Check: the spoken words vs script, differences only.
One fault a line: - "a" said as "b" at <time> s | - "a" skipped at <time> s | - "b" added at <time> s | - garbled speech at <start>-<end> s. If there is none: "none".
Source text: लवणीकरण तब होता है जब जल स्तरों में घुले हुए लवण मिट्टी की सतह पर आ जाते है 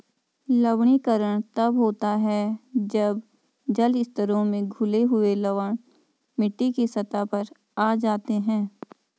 none